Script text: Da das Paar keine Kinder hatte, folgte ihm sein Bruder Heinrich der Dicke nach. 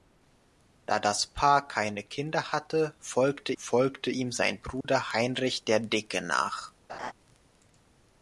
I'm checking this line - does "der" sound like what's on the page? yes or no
yes